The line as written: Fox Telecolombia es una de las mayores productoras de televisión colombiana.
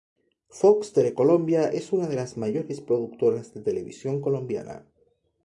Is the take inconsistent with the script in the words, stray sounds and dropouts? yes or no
no